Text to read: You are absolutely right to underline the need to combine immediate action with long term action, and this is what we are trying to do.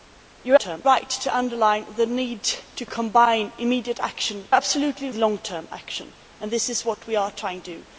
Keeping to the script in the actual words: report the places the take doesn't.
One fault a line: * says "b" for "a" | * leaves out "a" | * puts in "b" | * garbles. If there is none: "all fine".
* says "term" for "absolutely"
* says "absolutely" for "with"
* leaves out "to"